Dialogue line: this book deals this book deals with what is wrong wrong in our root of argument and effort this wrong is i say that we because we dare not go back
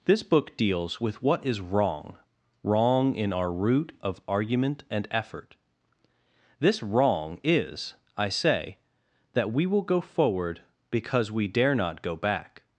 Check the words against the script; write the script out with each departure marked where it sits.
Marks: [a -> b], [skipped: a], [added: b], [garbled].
this book deals [skipped: this book deals] with what is wrong wrong in our root of argument and effort this wrong is i say that we [added: will go forward] because we dare not go back